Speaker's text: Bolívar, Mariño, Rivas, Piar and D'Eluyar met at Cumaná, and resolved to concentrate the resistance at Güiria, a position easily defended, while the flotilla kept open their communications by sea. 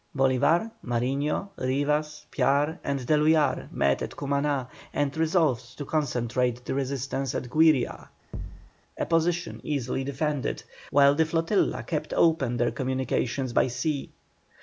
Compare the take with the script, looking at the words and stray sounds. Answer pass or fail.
fail